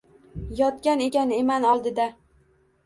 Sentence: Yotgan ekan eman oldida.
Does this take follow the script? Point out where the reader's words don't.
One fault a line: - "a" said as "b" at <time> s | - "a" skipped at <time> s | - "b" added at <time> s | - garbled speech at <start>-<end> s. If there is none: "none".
none